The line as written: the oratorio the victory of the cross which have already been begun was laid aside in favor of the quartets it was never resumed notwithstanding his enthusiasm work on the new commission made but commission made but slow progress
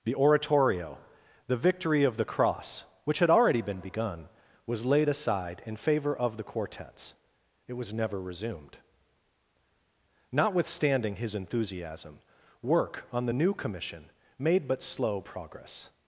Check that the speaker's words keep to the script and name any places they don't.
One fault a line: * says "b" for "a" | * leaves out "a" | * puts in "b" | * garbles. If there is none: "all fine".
* says "had" for "have"
* leaves out "commission made but"